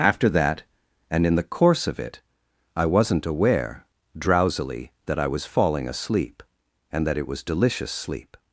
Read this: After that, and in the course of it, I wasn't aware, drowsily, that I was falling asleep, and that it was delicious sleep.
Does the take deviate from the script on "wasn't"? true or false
false